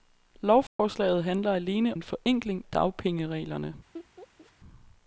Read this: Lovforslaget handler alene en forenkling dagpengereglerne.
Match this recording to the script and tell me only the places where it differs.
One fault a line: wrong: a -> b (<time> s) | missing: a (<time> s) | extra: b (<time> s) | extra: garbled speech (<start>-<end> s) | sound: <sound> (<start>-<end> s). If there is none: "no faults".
sound: dropout (0.7-0.8 s)
sound: laugh (3.9-4.5 s)